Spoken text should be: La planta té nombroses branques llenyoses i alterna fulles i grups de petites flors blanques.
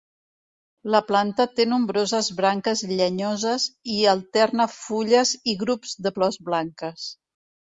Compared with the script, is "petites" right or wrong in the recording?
wrong